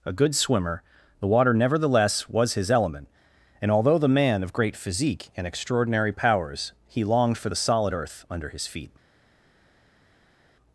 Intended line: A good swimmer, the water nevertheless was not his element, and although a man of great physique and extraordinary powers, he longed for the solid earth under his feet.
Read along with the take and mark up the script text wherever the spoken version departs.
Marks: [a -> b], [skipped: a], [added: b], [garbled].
A good swimmer, the water nevertheless was [skipped: not] his element, and although [a -> the] man of great physique and extraordinary powers, he longed for the solid earth under his feet.